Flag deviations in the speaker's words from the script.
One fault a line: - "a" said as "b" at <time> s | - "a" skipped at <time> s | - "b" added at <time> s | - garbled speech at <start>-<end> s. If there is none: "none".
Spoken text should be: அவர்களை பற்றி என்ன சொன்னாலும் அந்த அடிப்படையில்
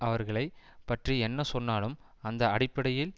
none